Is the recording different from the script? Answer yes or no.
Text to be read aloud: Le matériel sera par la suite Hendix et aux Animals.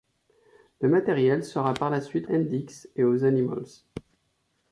no